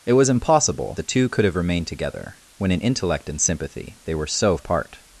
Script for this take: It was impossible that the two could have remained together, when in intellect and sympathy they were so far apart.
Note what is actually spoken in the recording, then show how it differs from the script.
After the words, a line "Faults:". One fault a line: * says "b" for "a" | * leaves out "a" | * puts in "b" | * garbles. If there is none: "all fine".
It was impossible the two could have remained together, when in intellect and sympathy they were so apart.
Faults:
* leaves out "that"
* leaves out "far"